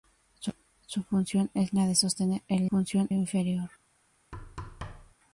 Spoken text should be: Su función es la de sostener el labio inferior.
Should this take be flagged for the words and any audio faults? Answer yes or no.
yes